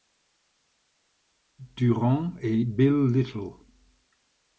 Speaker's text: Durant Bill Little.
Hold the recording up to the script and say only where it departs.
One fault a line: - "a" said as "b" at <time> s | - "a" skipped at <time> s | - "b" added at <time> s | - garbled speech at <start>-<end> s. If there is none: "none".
- "et" added at 2.4 s